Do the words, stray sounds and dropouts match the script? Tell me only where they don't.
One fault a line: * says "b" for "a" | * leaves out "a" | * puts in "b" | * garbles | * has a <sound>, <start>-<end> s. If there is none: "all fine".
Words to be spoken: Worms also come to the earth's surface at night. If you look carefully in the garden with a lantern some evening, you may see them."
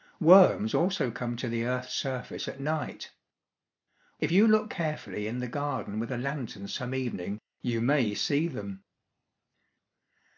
all fine